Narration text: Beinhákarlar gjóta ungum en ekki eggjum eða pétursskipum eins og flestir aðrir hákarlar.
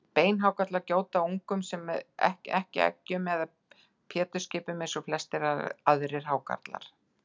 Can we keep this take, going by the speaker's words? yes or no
no